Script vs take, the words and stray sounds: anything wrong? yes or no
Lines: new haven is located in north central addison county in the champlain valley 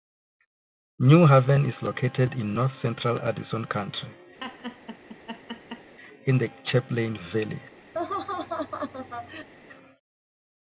yes